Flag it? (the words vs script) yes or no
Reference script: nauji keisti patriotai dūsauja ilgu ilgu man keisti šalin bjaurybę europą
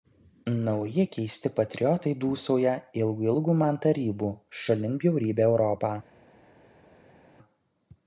yes